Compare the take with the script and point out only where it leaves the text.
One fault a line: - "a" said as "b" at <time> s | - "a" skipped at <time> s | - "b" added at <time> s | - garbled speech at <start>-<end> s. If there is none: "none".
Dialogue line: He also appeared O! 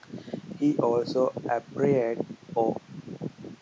none